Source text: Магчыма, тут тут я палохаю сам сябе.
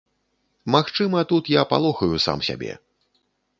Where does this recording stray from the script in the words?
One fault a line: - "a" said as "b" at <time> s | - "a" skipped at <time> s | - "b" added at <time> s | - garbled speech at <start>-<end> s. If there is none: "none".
- "тут" skipped at 1.5 s